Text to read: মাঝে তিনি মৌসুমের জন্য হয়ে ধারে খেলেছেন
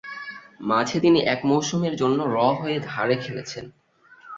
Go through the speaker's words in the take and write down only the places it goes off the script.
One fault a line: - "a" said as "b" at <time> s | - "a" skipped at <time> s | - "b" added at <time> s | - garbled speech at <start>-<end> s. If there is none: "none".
- "এক" added at 1.2 s
- "র" added at 2.3 s